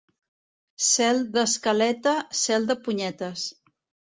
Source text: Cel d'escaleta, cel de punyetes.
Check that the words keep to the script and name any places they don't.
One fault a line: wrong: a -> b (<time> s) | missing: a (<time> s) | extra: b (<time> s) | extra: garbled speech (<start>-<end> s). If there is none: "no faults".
no faults